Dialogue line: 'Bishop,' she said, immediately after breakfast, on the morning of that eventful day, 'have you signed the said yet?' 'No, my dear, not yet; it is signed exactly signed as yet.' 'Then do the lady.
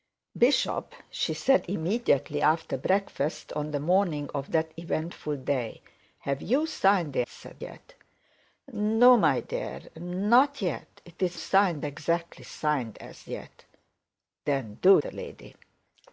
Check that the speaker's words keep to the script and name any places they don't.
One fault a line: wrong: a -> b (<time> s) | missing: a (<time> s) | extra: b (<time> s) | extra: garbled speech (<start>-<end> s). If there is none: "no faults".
no faults